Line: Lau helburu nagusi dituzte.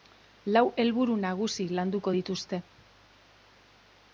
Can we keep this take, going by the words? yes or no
no